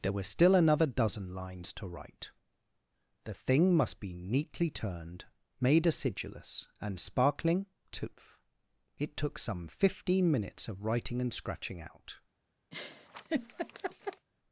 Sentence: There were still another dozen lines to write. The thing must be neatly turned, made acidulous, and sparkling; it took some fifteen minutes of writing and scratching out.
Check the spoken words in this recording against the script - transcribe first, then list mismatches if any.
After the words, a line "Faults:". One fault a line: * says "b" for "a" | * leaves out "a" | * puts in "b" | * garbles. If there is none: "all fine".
There were still another dozen lines to write. The thing must be neatly turned, made acidulous, and sparkling; tooth it took some fifteen minutes of writing and scratching out.
Faults:
* puts in "tooth"